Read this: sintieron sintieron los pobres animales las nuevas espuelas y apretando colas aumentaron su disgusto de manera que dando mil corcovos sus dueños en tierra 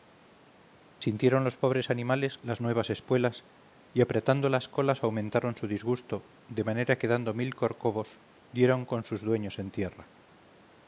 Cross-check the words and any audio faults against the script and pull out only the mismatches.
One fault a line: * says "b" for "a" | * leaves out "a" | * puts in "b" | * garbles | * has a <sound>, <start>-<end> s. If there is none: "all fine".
* leaves out "sintieron"
* puts in "las"
* puts in "dieron con"